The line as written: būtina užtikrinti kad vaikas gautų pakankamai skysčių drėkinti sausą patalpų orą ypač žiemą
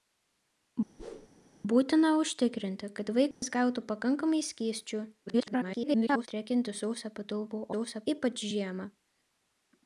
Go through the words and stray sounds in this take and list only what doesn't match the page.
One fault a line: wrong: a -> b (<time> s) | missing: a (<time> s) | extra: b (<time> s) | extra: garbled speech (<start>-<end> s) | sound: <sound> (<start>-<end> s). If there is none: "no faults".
sound: whoosh (1.0-1.3 s)
sound: dropout (3.3-3.4 s)
extra: garbled speech (5.3-6.3 s)
wrong: orą -> sausą (7.7 s)